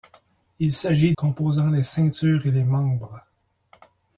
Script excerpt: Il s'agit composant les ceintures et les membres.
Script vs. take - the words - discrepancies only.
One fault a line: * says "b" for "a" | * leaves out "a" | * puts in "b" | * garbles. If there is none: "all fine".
all fine